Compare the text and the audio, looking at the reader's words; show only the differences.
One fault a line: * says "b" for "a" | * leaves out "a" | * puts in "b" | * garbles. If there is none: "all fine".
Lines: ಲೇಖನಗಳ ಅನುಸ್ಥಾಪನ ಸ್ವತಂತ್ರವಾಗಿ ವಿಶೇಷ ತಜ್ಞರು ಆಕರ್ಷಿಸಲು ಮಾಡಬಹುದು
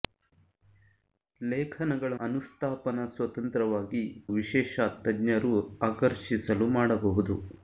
all fine